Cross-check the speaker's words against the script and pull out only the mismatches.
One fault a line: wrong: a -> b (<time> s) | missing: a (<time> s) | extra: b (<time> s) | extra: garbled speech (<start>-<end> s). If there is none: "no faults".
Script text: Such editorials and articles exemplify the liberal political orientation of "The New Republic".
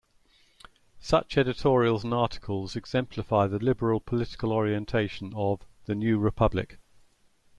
no faults